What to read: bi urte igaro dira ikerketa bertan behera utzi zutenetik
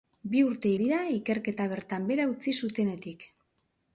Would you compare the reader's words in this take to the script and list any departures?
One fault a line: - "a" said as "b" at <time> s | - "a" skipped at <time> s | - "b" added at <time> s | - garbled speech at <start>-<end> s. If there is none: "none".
- "igaro" skipped at 0.7 s